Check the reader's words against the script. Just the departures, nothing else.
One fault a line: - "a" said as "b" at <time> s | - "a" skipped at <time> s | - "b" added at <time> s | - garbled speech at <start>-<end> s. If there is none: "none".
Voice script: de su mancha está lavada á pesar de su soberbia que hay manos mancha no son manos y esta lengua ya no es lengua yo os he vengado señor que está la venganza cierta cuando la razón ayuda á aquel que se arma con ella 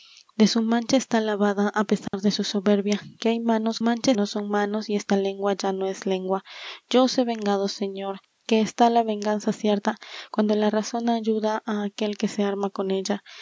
none